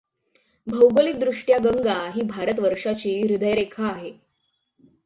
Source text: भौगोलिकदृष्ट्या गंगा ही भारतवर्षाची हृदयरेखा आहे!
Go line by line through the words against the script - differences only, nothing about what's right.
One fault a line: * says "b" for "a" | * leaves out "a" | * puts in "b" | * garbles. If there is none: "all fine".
all fine